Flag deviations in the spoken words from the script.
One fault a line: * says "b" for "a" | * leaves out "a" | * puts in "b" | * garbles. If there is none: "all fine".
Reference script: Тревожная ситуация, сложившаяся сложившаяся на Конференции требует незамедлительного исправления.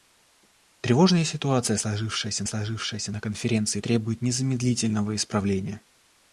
all fine